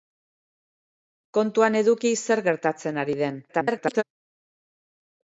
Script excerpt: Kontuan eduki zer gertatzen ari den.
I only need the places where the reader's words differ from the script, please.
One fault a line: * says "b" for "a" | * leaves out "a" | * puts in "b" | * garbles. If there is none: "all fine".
* garbles